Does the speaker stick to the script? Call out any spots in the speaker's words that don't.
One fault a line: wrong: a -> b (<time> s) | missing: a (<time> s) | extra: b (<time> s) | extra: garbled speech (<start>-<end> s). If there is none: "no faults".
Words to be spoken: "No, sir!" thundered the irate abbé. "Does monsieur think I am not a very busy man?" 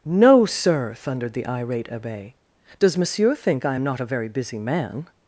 no faults